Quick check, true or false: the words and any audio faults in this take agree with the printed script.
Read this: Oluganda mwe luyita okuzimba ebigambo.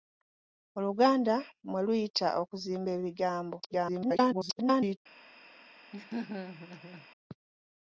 false